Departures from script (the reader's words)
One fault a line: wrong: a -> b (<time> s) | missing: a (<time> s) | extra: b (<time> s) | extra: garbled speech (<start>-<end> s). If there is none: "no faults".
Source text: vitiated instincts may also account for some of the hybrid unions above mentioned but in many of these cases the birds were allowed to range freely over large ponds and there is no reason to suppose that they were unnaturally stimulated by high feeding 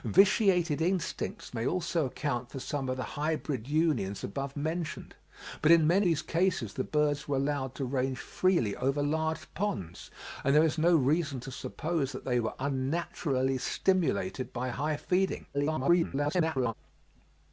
missing: of (6.1 s)
extra: garbled speech (15.5-16.7 s)